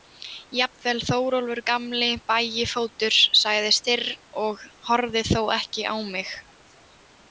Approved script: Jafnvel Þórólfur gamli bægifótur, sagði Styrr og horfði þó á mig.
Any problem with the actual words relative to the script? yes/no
yes